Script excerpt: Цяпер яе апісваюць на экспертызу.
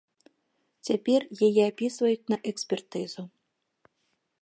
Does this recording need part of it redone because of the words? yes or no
no